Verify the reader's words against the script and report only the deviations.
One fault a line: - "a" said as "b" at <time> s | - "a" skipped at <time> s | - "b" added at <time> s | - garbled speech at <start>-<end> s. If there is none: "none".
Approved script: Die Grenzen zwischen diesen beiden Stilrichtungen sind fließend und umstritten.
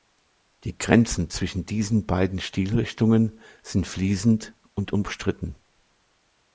none